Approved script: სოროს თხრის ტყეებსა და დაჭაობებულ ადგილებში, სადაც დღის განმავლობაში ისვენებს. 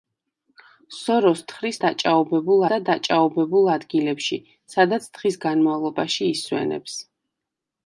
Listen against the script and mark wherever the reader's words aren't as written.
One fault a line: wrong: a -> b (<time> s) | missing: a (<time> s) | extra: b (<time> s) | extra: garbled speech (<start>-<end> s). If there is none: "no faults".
wrong: ტყეებსა -> დაჭაობებულ (1.8 s)